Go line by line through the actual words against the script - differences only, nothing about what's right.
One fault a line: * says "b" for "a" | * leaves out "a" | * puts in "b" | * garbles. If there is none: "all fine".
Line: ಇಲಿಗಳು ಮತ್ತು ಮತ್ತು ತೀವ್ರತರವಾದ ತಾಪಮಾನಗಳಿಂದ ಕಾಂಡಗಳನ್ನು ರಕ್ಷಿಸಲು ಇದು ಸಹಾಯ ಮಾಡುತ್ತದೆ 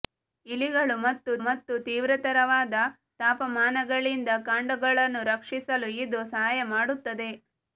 all fine